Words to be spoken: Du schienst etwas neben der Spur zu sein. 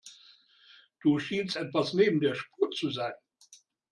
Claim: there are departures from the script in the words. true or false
false